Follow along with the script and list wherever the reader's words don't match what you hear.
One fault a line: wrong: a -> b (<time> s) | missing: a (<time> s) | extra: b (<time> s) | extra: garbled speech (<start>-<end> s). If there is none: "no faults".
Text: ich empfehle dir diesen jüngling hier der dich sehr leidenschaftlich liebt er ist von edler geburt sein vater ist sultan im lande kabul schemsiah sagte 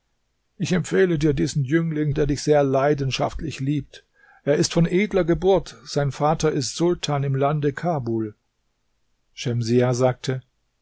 missing: hier (2.1 s)